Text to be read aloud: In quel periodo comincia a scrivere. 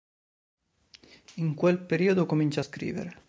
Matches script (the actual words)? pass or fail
pass